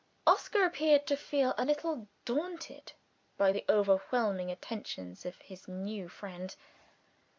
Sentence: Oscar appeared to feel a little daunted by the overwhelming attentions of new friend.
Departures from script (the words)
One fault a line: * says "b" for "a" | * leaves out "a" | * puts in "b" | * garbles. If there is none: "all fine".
* puts in "his"